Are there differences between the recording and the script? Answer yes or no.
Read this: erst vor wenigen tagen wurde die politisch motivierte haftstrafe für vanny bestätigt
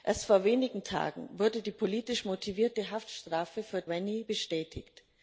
no